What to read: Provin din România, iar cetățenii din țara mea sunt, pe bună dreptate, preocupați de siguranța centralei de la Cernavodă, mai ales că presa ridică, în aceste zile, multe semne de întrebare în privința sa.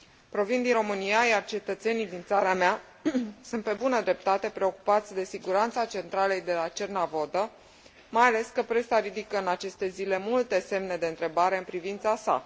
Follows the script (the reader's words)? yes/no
yes